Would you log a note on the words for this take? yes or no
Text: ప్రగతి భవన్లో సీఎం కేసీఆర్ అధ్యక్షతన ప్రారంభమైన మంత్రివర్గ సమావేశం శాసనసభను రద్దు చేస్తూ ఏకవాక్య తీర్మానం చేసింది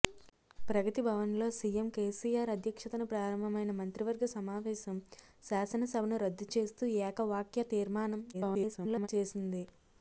yes